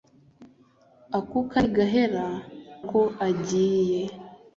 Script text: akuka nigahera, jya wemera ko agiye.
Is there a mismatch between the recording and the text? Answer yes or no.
yes